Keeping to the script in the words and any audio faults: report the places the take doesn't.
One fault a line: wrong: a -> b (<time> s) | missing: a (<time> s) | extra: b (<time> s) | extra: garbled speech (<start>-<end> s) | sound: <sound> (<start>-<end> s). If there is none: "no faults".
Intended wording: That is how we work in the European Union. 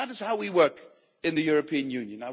no faults